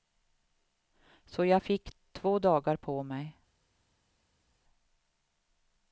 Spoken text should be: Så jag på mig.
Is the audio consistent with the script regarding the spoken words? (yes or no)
no